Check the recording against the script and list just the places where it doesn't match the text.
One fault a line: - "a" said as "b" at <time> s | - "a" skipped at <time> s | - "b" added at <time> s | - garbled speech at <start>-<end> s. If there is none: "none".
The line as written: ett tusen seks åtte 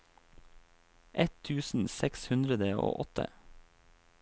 - "hundre og" added at 2.3 s